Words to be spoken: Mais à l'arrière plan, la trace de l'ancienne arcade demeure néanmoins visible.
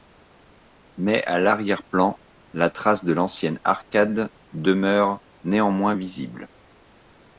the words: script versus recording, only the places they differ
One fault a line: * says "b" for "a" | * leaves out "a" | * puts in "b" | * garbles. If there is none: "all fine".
all fine